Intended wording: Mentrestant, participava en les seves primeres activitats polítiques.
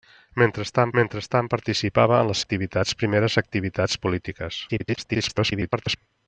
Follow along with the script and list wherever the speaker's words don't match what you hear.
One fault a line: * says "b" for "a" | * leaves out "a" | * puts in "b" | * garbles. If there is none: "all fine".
* puts in "mentrestant"
* says "activitats" for "seves"
* garbles